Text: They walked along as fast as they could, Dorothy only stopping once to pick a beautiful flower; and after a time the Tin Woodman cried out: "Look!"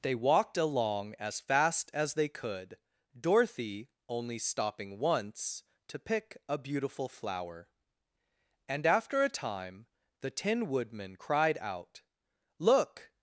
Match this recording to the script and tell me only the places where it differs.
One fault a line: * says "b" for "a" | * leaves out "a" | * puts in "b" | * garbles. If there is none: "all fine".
all fine